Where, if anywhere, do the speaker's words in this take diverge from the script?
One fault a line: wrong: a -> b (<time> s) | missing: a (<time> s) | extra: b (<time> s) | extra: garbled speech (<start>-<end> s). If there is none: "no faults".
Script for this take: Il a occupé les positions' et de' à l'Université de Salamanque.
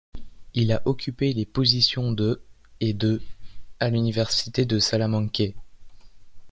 extra: de (2.1 s)